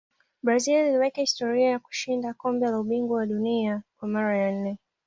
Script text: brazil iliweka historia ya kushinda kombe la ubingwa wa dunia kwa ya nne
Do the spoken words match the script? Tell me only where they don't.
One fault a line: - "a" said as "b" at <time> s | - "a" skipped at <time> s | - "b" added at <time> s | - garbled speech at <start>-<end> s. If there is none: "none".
- "mara" added at 4.1 s